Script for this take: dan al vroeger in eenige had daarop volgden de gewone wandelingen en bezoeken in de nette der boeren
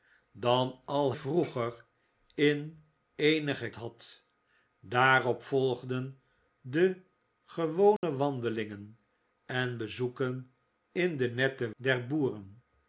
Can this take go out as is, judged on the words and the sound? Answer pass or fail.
fail